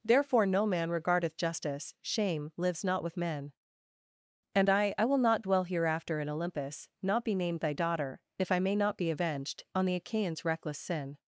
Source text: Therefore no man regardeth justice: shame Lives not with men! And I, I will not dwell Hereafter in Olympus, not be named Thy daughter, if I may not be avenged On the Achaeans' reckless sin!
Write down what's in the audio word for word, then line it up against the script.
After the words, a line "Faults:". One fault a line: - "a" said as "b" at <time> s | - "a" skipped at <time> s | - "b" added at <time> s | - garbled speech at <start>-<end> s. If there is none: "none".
Therefore no man regardeth justice: shame Lives not with men! And I, I will not dwell Hereafter in Olympus, not be named Thy daughter, if I may not be avenged On the Achaeans' reckless sin!
Faults:
none